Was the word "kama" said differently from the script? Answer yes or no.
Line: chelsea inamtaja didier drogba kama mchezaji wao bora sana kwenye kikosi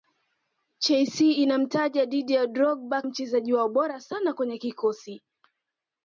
yes